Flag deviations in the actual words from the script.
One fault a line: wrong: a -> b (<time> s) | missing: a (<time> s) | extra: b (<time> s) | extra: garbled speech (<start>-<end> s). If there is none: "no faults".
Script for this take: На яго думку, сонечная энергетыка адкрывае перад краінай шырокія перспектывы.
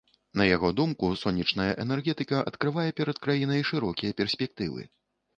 no faults